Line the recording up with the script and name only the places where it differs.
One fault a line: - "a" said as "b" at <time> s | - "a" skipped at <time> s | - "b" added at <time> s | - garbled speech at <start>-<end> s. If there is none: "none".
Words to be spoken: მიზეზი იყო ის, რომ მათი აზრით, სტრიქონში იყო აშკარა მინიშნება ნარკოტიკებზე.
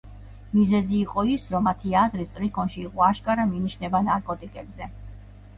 none